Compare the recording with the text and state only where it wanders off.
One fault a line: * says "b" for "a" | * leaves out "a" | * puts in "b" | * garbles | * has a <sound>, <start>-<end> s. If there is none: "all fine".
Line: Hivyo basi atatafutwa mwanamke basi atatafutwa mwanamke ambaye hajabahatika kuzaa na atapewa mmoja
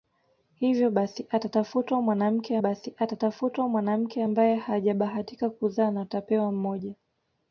all fine